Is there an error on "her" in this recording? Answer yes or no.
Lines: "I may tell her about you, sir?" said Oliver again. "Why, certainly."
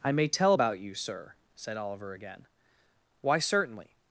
yes